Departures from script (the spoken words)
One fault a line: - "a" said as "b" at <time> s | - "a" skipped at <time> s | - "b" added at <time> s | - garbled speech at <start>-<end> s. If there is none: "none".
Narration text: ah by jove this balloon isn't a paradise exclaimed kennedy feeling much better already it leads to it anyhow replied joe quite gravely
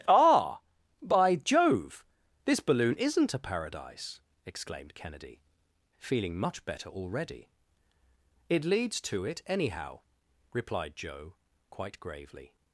none